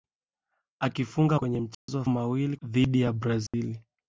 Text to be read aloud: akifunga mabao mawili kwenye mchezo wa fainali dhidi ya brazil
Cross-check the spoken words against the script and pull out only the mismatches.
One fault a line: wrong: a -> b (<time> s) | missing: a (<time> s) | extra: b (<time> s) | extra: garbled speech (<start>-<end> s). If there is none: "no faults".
missing: mabao mawili (1.4 s)
wrong: fainali -> mawili (2.1 s)